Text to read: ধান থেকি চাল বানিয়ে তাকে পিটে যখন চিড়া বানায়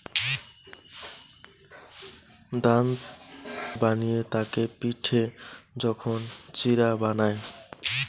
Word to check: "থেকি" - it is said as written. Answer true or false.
false